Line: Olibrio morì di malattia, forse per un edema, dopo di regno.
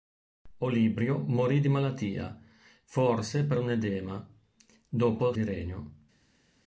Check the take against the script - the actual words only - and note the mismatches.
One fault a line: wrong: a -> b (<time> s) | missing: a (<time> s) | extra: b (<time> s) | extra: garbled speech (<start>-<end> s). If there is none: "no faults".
no faults